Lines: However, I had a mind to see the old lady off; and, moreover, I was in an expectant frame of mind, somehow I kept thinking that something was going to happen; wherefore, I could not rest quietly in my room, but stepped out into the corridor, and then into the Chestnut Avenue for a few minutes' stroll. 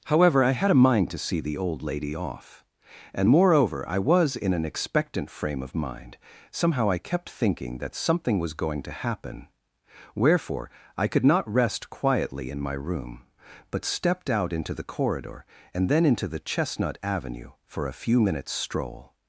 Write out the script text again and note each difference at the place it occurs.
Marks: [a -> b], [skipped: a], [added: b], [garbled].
However, I had a mind to see the old lady off; and, moreover, I was in an expectant frame of mind, somehow I kept thinking that something was going to happen; wherefore, I could not rest quietly in my room, but stepped out into the corridor, and then into the Chestnut Avenue for a few minutes' stroll.